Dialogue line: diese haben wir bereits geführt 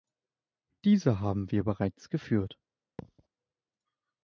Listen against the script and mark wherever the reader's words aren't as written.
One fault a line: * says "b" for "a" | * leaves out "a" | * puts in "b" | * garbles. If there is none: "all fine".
all fine